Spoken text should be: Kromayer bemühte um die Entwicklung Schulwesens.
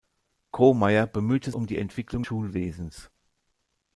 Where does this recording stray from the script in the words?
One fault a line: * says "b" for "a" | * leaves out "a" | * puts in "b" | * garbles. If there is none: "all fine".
all fine